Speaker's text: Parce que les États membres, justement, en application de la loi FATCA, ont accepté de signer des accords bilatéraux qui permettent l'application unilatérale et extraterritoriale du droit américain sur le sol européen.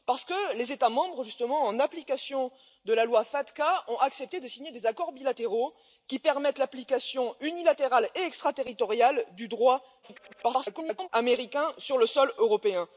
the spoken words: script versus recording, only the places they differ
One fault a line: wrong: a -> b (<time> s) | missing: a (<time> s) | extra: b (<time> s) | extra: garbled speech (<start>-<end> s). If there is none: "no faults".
extra: garbled speech (10.0-11.1 s)